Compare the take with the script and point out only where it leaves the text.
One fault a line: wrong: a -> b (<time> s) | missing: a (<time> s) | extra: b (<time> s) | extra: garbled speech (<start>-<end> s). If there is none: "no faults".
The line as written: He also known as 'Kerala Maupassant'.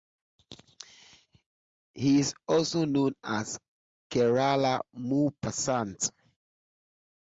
extra: is (2.2 s)